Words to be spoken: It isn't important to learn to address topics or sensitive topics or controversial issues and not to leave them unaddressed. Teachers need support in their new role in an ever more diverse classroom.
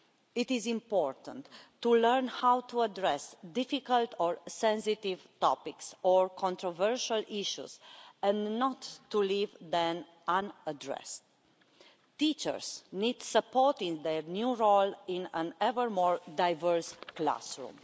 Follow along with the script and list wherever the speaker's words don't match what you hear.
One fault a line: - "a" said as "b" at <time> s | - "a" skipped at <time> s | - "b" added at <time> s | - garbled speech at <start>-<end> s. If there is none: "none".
- "isn't" said as "is" at 0.5 s
- "how" added at 2.3 s
- "topics" said as "difficult" at 3.5 s